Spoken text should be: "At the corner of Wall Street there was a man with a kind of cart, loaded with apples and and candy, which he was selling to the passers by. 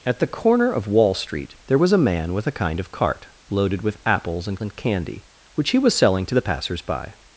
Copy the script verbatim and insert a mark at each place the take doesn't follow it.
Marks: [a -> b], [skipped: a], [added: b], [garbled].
"At the corner of Wall Street there was a man with a kind of cart, loaded with apples and and candy, which he was selling to the passers by.